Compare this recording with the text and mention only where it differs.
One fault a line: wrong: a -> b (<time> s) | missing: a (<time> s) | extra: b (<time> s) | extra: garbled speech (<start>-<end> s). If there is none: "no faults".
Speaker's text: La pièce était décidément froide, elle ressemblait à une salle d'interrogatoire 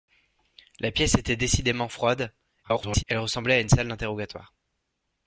extra: garbled speech (2.6-3.0 s)